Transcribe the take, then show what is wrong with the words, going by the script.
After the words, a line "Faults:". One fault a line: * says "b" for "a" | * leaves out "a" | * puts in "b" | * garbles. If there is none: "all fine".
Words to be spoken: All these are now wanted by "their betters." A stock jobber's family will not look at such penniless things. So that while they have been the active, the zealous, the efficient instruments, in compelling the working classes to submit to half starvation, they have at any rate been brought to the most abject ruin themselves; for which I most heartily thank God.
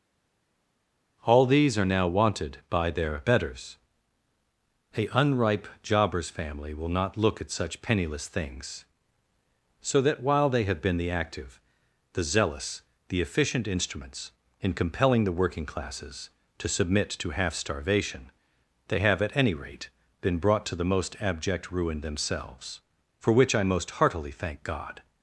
All these are now wanted by "their betters." A unripe jobber's family will not look at such penniless things. So that while they have been the active, the zealous, the efficient instruments, in compelling the working classes to submit to half starvation, they have at any rate been brought to the most abject ruin themselves; for which I most heartily thank God.
Faults:
* says "unripe" for "stock"